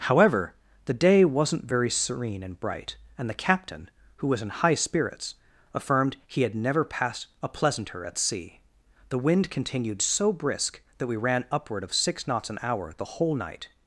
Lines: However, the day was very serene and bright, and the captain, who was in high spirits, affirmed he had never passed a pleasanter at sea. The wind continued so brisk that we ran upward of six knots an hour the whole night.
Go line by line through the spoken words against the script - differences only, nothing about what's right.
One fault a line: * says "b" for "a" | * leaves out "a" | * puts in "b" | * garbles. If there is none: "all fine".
* says "wasn't" for "was"